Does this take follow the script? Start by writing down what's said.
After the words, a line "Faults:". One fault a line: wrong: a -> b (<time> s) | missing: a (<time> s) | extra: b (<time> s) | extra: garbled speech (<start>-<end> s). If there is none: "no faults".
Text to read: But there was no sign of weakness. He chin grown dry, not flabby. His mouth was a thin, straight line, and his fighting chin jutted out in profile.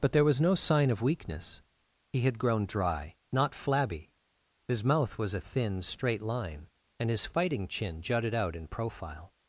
But there was no sign of weakness. He had grown dry, not flabby. His mouth was a thin, straight line, and his fighting chin jutted out in profile.
Faults:
wrong: chin -> had (2.2 s)